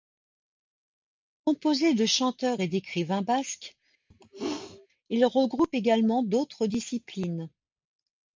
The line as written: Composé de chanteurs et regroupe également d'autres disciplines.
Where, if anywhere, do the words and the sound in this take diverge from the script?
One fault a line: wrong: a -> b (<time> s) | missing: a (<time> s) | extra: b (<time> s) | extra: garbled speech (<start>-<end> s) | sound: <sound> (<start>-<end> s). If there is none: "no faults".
extra: d'écrivains basques il (2.7 s)
sound: sneeze (4.1-4.9 s)